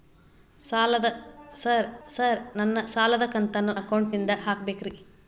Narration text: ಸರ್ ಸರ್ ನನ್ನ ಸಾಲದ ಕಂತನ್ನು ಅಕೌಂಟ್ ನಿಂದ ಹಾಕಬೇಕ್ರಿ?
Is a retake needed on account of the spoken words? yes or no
no